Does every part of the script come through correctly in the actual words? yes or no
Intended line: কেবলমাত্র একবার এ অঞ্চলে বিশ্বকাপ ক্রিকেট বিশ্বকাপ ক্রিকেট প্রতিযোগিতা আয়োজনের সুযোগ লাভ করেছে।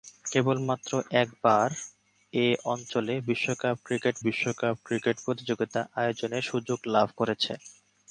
yes